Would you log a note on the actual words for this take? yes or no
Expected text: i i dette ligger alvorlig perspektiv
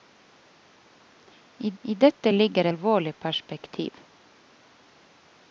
no